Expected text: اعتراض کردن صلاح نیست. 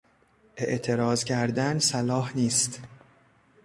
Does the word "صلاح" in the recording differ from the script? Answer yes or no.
no